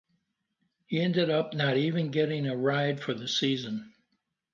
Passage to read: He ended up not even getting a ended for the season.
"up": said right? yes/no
yes